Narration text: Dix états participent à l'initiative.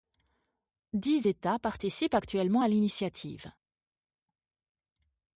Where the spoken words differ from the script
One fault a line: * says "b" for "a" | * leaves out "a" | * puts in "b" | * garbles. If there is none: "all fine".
* puts in "actuellement"